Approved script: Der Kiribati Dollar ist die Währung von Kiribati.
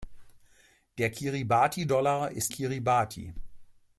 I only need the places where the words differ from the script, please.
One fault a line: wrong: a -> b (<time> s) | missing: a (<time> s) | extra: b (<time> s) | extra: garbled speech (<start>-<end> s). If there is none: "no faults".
missing: die Währung von (2.5 s)